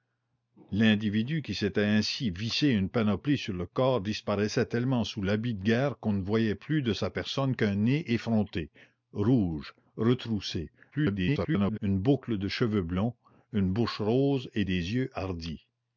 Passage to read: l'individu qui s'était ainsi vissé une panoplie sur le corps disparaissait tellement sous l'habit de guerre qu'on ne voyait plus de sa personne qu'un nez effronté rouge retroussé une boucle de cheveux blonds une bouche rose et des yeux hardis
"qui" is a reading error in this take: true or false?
false